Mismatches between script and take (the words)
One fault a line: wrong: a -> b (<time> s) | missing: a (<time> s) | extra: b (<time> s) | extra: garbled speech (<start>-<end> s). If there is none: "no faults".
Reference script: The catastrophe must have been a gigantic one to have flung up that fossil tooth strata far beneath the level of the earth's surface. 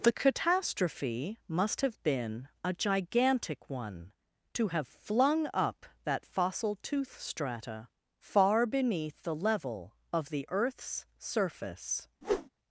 no faults